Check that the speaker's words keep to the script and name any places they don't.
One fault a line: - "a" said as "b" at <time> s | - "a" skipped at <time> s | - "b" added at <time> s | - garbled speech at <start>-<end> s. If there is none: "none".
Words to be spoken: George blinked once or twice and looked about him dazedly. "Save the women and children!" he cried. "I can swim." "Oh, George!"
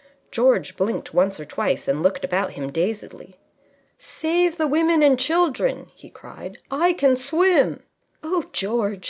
none